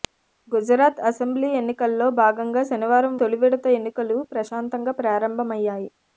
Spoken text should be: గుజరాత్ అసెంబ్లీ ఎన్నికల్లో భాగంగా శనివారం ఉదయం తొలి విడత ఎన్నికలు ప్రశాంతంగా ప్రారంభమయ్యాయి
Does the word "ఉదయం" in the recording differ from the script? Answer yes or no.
yes